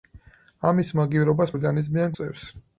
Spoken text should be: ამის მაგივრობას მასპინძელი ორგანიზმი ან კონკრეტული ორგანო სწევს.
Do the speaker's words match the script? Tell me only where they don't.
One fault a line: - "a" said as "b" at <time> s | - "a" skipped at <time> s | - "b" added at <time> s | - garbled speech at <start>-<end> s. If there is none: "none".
- "მასპინძელი" skipped at 1.5 s
- "კონკრეტული ორგანო" skipped at 2.1 s